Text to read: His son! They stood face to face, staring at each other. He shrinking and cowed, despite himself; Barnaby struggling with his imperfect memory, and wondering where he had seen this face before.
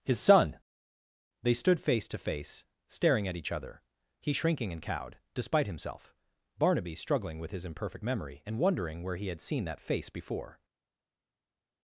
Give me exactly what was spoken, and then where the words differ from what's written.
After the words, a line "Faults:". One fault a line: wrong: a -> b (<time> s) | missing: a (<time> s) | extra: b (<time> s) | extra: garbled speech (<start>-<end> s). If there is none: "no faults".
His son! They stood face to face, staring at each other. He shrinking and cowed, despite himself; Barnaby struggling with his imperfect memory, and wondering where he had seen that face before.
Faults:
wrong: this -> that (9.6 s)